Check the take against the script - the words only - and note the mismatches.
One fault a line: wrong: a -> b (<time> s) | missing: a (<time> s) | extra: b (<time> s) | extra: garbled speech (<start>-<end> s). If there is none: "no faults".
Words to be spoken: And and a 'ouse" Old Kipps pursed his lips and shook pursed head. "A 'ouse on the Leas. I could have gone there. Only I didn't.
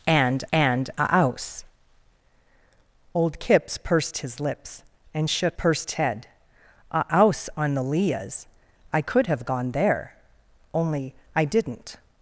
no faults